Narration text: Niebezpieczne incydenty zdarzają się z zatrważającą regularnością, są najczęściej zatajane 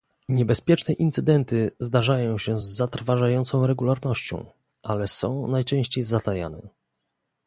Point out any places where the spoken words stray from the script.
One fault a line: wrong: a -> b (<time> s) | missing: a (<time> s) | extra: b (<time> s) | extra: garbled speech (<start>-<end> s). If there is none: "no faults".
extra: ale (4.8 s)